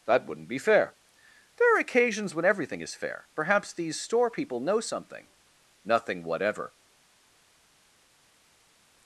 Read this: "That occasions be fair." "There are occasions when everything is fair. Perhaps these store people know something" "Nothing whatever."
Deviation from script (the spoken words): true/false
true